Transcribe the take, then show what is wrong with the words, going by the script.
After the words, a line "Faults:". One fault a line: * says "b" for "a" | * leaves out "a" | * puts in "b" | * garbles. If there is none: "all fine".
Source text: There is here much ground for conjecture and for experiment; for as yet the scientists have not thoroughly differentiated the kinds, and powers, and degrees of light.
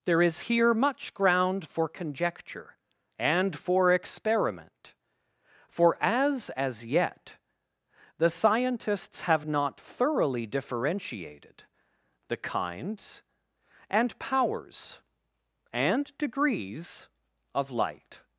There is here much ground for conjecture and for experiment; for as as yet the scientists have not thoroughly differentiated the kinds, and powers, and degrees of light.
Faults:
* puts in "as"